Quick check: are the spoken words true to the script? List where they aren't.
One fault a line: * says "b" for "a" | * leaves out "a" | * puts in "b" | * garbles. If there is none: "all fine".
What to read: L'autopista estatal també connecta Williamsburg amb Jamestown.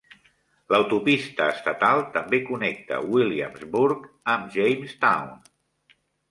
all fine